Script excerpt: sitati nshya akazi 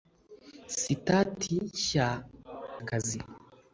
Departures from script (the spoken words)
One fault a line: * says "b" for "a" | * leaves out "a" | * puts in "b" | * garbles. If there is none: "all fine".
all fine